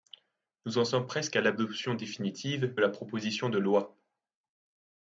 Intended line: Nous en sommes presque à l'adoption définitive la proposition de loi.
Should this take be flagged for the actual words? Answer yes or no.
no